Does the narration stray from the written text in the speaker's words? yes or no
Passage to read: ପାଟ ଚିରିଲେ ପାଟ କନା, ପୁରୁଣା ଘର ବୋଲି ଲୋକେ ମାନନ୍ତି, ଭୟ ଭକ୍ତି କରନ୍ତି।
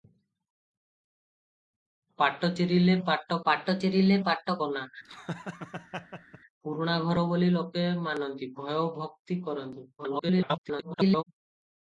yes